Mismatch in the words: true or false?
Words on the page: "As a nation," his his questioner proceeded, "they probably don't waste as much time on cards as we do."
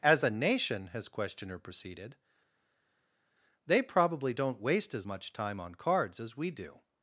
true